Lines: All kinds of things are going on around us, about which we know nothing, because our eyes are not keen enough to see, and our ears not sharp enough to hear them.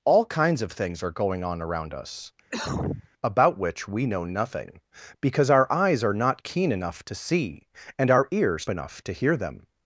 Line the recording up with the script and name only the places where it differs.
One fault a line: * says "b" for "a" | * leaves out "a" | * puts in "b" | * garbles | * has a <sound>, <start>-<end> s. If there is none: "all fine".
* has a cough, 2.5-3.1 s
* leaves out "not sharp"